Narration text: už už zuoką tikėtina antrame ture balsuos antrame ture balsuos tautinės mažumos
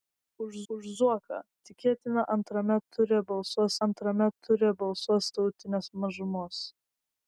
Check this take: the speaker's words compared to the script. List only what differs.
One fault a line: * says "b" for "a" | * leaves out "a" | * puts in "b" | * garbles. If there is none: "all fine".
all fine